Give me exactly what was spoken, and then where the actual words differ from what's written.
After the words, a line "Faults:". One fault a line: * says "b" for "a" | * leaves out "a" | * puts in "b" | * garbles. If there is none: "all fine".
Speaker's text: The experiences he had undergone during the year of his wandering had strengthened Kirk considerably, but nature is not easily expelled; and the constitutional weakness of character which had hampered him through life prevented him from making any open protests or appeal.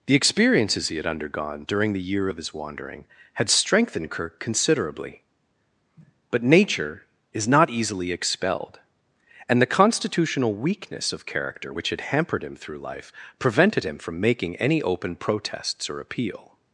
The experiences he had undergone during the year of his wandering had strengthened Kirk considerably, but nature is not easily expelled; and the constitutional weakness of character which had hampered him through life prevented him from making any open protests or appeal.
Faults:
all fine